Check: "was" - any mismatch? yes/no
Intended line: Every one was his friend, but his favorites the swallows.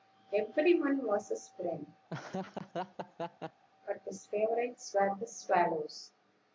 no